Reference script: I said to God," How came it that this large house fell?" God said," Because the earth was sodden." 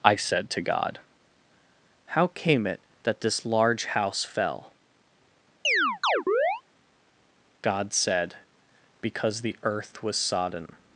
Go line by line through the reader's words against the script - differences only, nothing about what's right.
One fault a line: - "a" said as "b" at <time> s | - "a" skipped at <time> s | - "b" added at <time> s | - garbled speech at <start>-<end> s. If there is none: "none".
none